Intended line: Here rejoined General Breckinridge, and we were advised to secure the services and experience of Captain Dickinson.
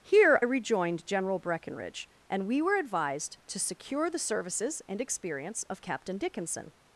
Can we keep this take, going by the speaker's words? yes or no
yes